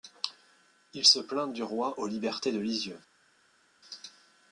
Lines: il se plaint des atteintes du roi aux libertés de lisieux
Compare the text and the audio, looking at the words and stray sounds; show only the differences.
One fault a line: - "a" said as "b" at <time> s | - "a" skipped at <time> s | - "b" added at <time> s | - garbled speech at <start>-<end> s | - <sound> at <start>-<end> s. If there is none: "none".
- "des atteintes" skipped at 1.5 s